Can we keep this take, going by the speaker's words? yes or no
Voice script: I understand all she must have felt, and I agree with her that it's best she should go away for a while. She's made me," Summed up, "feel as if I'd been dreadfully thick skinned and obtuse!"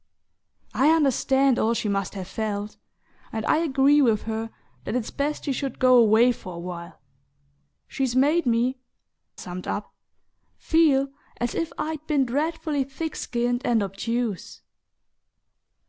yes